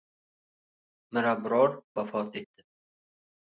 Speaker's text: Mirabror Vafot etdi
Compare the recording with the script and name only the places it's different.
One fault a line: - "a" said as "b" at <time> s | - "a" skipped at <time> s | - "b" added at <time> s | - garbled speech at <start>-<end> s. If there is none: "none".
none